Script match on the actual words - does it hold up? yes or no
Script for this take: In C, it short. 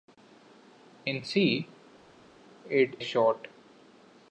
yes